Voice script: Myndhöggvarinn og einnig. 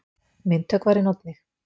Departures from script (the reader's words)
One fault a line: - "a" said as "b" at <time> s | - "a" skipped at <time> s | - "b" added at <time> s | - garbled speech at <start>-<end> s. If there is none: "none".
none